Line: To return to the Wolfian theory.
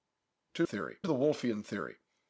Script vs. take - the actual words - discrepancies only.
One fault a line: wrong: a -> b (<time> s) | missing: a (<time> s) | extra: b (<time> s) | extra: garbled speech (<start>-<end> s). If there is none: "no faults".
wrong: return -> theory (0.6 s)